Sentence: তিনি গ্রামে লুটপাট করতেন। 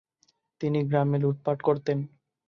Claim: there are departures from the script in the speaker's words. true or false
false